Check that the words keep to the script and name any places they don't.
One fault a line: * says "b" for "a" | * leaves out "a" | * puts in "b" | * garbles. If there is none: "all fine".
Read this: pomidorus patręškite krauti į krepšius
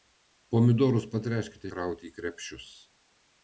all fine